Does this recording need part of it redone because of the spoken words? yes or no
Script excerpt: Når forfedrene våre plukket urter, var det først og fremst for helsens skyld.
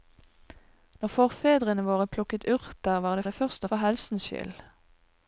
yes